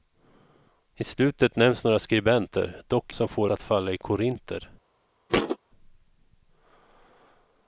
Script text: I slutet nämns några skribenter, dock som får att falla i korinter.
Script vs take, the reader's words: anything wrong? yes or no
no